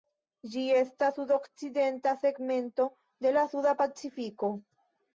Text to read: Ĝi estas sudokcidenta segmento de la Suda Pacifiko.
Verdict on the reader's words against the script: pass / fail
pass